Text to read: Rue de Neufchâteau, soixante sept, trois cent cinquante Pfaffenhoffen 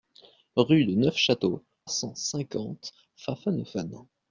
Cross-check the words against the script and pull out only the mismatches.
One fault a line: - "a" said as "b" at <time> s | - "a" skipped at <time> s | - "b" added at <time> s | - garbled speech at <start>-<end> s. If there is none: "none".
- "soixante sept trois" skipped at 1.6 s